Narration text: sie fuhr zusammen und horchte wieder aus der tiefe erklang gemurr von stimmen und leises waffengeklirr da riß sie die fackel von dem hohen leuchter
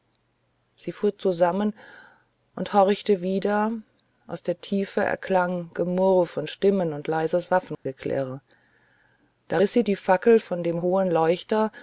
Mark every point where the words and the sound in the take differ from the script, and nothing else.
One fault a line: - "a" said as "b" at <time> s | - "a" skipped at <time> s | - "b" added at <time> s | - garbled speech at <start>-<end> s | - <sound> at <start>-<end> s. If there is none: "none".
- dropout at 7.7-7.9 s